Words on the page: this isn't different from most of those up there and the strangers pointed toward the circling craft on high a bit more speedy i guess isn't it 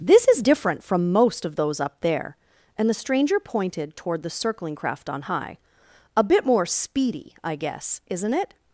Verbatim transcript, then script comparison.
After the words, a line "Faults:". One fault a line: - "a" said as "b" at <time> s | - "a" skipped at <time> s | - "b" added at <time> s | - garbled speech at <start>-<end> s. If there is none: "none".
this is different from most of those up there and the stranger pointed toward the circling craft on high a bit more speedy i guess isn't it
Faults:
- "isn't" said as "is" at 0.3 s
- "strangers" said as "stranger" at 2.9 s